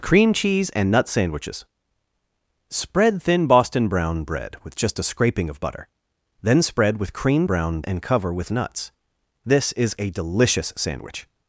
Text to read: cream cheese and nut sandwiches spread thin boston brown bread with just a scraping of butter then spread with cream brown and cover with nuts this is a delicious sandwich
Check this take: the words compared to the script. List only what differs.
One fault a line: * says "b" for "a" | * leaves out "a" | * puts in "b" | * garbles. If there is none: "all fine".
all fine